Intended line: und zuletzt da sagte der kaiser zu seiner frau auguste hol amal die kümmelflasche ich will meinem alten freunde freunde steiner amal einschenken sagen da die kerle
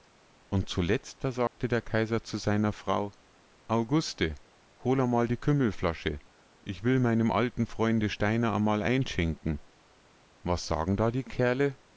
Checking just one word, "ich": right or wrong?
right